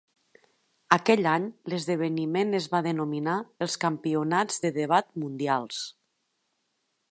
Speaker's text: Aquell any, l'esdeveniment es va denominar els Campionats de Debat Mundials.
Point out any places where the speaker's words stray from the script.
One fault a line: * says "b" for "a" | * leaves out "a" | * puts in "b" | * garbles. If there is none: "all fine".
all fine